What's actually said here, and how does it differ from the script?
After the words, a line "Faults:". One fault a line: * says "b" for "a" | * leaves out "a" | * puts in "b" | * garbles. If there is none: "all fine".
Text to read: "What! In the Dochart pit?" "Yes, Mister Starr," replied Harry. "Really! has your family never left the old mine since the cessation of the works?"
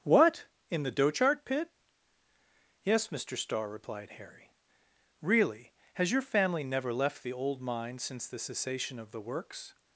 "What! In the Dochart pit?" "Yes, Mister Starr," replied Harry. "Really! has your family never left the old mine since the cessation of the works?"
Faults:
all fine